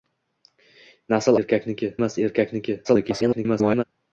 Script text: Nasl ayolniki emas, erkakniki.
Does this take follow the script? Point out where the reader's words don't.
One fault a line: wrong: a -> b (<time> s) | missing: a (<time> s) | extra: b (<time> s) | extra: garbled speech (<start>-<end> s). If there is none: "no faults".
wrong: ayolniki -> erkakniki (1.4 s)
extra: garbled speech (2.8-3.8 s)